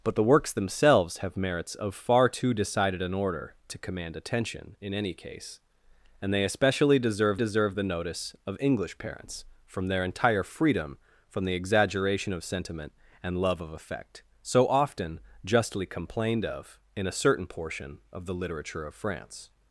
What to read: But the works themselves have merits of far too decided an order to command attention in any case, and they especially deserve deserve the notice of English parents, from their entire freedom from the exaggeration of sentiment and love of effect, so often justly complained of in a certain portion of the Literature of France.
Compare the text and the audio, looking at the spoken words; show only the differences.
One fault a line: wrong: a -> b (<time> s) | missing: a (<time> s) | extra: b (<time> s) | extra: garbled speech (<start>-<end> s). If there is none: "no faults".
no faults